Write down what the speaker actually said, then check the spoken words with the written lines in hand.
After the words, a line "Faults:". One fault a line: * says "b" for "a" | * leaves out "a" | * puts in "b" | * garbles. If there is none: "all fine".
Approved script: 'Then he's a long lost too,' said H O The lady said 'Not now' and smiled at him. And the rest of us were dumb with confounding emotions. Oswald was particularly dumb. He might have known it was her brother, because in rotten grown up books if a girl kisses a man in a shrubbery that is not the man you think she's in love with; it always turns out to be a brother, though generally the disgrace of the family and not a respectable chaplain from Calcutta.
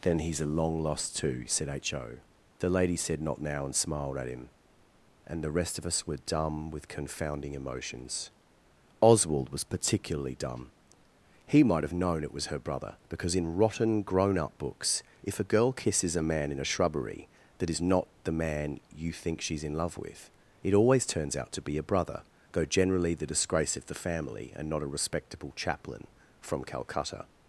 'Then he's a long lost too,' said H O The lady said 'Not now' and smiled at him. And the rest of us were dumb with confounding emotions. Oswald was particularly dumb. He might have known it was her brother, because in rotten grown up books if a girl kisses a man in a shrubbery that is not the man you think she's in love with; it always turns out to be a brother, though generally the disgrace of the family and not a respectable chaplain from Calcutta.
Faults:
all fine